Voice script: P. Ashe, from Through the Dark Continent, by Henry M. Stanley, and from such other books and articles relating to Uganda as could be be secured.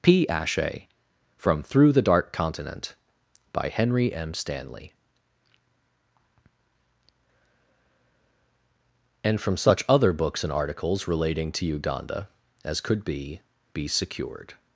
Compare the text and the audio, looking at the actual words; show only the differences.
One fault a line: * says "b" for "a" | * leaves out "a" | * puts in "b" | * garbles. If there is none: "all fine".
all fine